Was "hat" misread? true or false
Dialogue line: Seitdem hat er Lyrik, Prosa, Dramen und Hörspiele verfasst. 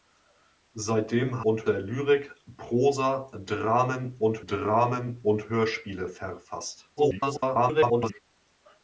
true